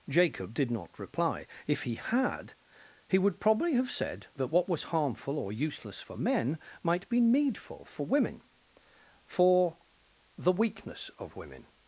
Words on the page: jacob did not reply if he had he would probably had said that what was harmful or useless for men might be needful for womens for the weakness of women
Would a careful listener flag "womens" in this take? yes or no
yes